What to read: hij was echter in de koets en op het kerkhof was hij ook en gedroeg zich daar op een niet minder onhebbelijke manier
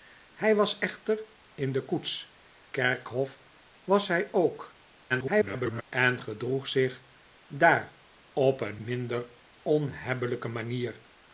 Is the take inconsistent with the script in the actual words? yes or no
yes